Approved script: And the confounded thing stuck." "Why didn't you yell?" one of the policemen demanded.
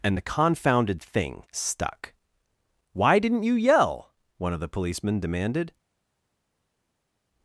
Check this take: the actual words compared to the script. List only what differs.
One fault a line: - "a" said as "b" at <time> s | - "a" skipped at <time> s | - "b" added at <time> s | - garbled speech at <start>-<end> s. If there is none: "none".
none